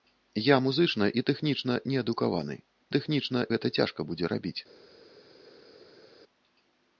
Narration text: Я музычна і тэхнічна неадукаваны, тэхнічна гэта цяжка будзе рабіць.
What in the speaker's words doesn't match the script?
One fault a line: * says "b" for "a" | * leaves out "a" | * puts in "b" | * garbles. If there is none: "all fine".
all fine